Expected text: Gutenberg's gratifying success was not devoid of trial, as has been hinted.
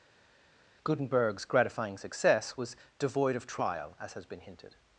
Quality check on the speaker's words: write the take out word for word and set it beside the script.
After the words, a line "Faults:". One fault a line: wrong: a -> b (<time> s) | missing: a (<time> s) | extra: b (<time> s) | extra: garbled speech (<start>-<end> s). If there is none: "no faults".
Gutenberg's gratifying success was devoid of trial, as has been hinted.
Faults:
missing: not (2.8 s)